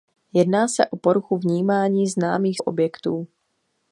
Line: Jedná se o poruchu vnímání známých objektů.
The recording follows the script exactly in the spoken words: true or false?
true